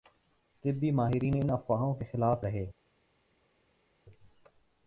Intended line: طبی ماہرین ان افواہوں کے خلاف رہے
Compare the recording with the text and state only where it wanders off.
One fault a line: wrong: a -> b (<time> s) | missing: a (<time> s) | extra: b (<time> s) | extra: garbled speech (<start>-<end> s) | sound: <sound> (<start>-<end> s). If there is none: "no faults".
no faults